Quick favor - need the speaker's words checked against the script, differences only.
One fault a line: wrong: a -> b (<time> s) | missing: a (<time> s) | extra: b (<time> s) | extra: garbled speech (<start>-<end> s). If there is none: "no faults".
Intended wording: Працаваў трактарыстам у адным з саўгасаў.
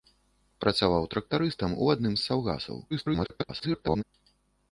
extra: garbled speech (2.9-4.0 s)